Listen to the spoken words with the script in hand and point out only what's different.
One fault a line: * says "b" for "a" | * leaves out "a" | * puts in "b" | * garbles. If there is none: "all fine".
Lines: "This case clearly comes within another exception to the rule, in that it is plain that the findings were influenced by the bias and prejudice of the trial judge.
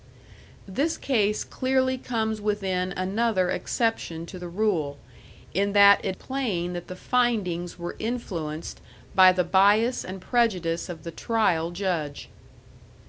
* leaves out "is"